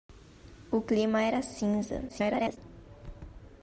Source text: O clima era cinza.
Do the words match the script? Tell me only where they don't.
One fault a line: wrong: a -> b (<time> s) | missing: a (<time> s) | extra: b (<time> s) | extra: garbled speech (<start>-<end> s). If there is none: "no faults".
extra: garbled speech (2.1-2.6 s)